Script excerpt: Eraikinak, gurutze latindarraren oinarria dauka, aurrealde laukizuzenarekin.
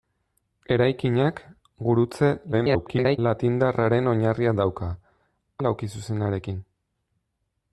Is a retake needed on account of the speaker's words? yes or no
yes